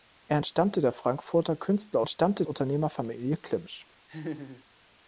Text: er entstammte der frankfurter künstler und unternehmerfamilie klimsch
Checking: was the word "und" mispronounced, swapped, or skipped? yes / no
yes